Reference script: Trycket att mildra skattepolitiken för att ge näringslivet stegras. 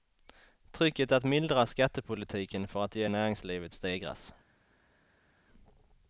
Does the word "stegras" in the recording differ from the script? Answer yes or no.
no